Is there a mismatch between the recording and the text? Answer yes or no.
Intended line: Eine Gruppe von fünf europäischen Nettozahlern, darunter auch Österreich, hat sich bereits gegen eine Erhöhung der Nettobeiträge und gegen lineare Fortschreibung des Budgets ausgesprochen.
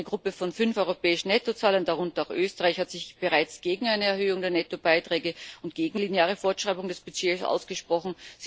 no